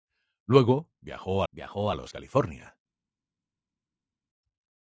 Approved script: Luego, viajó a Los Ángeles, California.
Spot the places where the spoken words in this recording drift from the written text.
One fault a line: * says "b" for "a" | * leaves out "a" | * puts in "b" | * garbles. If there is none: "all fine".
* puts in "viajó"
* leaves out "Ángeles"